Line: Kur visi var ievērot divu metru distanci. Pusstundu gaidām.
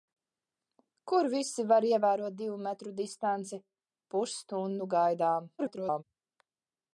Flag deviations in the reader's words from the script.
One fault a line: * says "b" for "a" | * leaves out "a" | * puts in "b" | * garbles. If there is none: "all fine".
* garbles